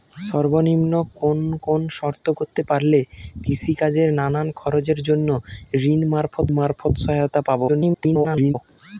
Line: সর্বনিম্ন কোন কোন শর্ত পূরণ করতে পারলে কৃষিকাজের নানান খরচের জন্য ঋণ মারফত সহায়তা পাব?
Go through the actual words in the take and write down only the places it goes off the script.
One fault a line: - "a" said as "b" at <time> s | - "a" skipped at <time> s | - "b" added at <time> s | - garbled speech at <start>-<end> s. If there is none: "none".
- "পূরণ" skipped at 2.2 s
- "মারফত" added at 6.6 s
- garbled speech at 7.7-8.5 s